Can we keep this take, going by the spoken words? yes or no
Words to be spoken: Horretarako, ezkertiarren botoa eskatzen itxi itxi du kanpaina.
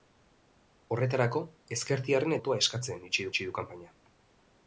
yes